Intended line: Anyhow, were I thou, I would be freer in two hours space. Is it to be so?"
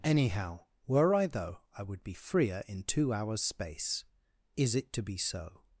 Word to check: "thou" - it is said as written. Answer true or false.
false